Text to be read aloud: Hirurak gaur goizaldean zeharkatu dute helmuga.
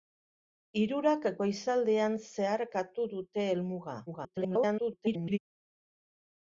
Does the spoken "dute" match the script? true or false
true